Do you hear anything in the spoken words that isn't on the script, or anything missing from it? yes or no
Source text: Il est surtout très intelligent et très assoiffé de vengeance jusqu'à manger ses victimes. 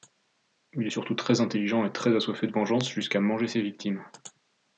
no